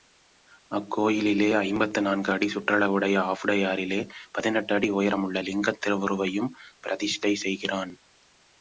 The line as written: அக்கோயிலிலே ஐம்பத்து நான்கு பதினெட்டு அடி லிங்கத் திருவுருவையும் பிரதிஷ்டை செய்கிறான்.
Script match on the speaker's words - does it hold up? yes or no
no